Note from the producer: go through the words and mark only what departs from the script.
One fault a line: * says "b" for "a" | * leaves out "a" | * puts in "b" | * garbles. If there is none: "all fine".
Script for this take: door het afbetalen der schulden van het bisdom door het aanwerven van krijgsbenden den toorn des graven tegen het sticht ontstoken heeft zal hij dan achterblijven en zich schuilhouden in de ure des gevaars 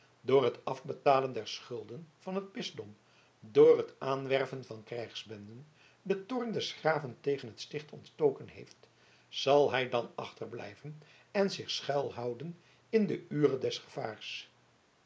all fine